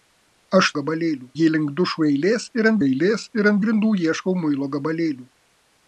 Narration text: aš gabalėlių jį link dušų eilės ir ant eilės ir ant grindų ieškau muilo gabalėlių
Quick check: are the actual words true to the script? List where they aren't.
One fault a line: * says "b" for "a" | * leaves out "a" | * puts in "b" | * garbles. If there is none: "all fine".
all fine